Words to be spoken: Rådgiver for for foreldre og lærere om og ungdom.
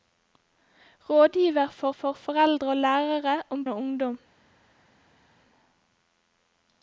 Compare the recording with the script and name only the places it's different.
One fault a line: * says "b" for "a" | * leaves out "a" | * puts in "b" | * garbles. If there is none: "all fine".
all fine